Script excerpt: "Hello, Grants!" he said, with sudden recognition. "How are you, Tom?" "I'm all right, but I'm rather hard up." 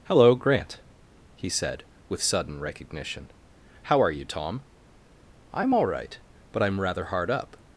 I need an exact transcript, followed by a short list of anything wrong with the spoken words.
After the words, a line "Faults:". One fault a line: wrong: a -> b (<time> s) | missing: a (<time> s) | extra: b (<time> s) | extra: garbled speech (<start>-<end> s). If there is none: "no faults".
"Hello, Grant!" he said, with sudden recognition. "How are you, Tom?" "I'm all right, but I'm rather hard up."
Faults:
wrong: Grants -> Grant (0.3 s)